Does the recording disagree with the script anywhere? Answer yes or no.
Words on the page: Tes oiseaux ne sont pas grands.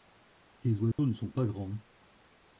no